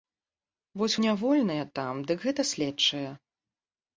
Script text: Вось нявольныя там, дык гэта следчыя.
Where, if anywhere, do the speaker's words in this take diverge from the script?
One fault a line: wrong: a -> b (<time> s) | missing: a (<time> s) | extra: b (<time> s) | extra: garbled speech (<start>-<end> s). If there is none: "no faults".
no faults